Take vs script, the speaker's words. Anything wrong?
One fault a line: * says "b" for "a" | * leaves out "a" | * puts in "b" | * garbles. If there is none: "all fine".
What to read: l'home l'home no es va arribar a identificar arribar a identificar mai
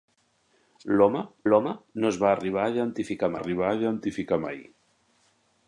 all fine